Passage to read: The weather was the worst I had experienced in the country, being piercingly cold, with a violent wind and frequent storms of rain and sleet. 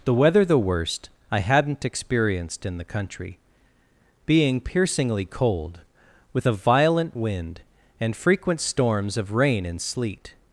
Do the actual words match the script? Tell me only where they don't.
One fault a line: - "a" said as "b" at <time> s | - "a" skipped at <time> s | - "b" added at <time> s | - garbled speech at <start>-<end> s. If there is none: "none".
- "was" skipped at 0.4 s
- "had" said as "hadn't" at 1.4 s